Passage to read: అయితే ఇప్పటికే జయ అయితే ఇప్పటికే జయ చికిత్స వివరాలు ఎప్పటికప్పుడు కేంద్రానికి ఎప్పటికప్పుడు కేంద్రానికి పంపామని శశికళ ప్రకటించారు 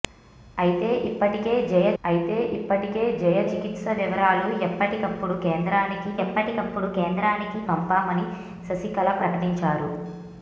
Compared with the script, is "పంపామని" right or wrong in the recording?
right